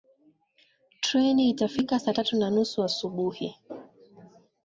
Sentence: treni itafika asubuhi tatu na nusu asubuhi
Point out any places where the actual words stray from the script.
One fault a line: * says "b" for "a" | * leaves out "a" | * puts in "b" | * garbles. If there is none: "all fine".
* says "saa" for "asubuhi"